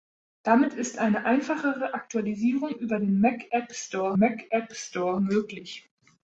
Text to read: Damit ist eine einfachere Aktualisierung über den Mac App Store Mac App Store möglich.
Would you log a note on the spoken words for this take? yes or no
no